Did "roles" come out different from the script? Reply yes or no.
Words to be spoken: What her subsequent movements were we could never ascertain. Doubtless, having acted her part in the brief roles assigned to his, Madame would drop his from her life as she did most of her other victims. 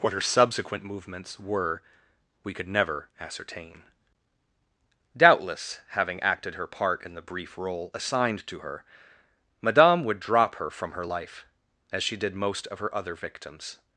yes